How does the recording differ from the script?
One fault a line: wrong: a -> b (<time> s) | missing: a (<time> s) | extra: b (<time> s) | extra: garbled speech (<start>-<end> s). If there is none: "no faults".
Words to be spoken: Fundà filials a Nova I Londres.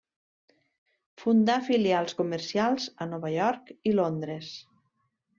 extra: comercials (2.2 s)
extra: York (3.4 s)